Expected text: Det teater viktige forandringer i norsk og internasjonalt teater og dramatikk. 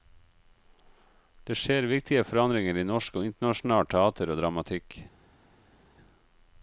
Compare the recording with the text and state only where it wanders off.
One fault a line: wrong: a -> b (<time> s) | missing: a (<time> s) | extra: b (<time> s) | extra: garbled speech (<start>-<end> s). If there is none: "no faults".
wrong: teater -> skjer (1.6 s)